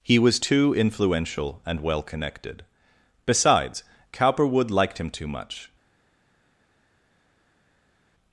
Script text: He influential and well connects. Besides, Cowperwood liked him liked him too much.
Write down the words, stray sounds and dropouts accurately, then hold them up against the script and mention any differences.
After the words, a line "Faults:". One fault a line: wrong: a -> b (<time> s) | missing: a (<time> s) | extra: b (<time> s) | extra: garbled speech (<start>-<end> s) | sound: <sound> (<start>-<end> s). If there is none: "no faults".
He was too influential and well connected. Besides, Cowperwood liked him too much.
Faults:
extra: was too (0.2 s)
wrong: connects -> connected (2.0 s)
missing: liked him (5.1 s)